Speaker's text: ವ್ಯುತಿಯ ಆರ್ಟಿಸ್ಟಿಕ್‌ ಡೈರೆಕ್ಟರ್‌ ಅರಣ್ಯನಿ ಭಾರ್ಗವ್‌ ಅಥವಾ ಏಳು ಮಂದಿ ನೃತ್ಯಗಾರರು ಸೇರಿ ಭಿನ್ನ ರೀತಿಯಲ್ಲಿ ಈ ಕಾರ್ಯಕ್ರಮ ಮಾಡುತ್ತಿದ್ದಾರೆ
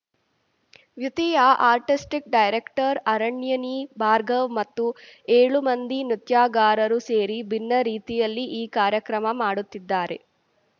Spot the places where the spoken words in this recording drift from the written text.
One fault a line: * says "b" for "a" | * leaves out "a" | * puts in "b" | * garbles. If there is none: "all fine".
* says "ಮತ್ತು" for "ಅಥವಾ"